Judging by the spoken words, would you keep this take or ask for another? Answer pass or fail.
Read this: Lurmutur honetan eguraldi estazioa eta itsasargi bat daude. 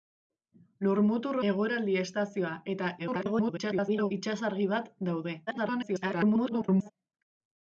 fail